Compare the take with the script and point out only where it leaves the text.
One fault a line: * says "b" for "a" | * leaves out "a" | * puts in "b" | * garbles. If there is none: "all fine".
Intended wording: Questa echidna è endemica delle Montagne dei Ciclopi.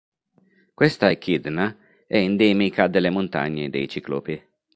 all fine